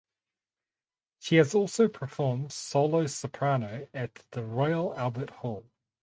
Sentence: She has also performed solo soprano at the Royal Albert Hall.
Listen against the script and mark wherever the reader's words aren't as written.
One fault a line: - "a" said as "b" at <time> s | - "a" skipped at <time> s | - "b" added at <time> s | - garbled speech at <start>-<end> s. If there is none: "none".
none